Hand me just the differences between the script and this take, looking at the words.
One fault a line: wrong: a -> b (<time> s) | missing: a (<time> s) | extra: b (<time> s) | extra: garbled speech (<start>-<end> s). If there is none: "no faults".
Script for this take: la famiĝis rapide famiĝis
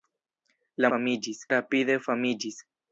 no faults